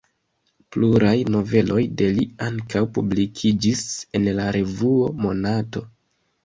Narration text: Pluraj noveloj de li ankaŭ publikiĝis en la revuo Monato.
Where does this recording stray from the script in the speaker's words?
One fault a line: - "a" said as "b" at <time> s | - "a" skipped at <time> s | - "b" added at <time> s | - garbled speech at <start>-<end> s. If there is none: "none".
none